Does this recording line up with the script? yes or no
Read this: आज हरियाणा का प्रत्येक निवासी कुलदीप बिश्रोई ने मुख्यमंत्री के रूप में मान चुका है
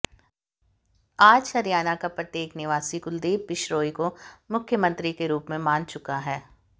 no